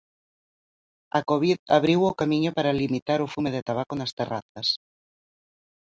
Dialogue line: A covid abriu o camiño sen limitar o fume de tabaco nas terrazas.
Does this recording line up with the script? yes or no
no